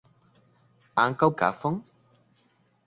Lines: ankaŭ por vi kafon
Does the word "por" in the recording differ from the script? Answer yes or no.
yes